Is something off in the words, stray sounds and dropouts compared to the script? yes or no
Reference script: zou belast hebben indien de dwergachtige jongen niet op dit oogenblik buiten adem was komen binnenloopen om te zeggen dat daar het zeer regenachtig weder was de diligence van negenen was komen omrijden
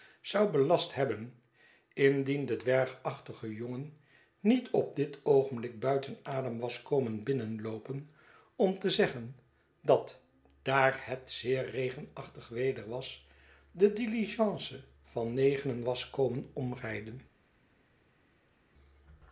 no